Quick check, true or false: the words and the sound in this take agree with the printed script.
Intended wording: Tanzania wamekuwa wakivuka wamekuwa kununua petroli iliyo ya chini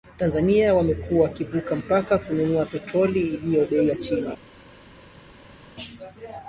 false